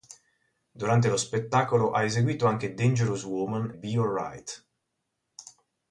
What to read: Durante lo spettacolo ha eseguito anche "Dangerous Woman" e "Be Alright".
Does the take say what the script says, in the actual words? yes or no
no